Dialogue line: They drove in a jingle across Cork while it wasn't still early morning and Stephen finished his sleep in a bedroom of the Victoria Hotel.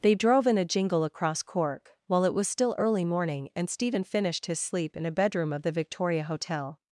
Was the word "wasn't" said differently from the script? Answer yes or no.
yes